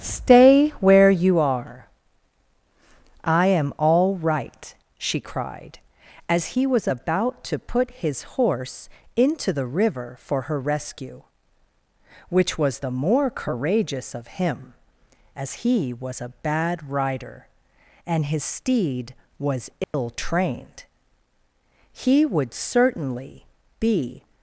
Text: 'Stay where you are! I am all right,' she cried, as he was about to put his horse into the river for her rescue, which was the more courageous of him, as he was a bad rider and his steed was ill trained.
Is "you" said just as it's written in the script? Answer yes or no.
yes